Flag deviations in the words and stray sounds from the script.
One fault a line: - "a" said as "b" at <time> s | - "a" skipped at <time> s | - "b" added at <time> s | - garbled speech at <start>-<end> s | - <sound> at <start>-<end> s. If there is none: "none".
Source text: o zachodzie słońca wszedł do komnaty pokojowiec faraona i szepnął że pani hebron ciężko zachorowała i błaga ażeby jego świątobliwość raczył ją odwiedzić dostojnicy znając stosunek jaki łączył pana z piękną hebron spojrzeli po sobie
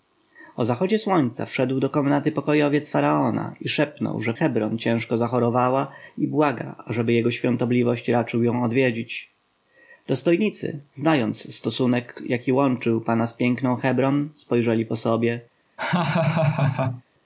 - "pani" skipped at 4.3 s
- laugh at 15.8-17.0 s